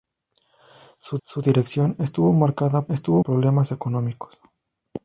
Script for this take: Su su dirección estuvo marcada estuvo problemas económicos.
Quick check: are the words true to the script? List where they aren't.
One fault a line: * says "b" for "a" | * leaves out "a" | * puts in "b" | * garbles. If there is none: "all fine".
all fine